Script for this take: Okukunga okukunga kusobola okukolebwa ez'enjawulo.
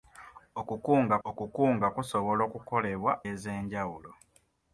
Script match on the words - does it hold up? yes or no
yes